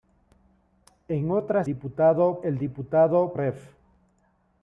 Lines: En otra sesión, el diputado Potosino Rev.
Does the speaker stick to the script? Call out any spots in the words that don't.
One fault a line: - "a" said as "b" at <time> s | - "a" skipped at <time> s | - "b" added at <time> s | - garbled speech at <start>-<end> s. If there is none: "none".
- "sesión" said as "diputado" at 1.6 s
- "Potosino" skipped at 3.3 s